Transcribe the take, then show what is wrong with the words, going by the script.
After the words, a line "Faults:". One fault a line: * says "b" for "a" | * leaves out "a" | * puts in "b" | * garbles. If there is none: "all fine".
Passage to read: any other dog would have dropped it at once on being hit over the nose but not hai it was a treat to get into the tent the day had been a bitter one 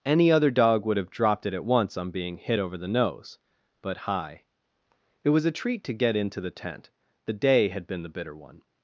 any other dog would have dropped it at once on being hit over the nose but hai it was a treat to get into the tent the day had been the bitter one
Faults:
* leaves out "not"
* says "the" for "a"